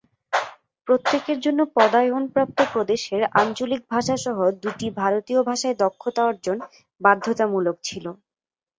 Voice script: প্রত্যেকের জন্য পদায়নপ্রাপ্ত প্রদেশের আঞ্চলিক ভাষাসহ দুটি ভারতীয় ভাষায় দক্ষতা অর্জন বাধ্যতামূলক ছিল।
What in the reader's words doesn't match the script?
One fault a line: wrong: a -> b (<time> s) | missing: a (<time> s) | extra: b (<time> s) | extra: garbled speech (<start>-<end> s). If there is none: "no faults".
no faults